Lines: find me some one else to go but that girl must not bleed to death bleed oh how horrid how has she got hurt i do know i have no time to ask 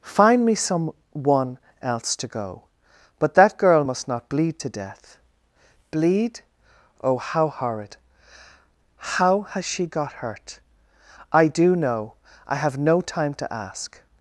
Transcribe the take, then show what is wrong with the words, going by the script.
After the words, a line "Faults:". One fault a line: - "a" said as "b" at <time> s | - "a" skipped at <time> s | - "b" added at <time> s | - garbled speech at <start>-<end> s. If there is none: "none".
find me some one else to go but that girl must not bleed to death bleed oh how horrid how has she got hurt i do know i have no time to ask
Faults:
none